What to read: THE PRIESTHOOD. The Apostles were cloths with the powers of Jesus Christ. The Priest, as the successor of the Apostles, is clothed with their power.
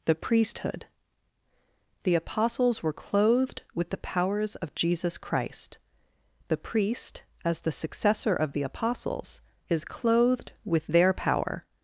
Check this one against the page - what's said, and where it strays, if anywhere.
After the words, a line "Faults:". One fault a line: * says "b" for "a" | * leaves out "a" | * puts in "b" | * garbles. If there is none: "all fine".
THE PRIESTHOOD. The Apostles were clothed with the powers of Jesus Christ. The Priest, as the successor of the Apostles, is clothed with their power.
Faults:
* says "clothed" for "cloths"